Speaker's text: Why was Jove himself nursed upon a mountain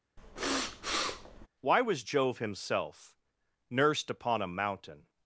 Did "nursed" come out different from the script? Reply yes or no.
no